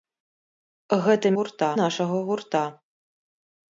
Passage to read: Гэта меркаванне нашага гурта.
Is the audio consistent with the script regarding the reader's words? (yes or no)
no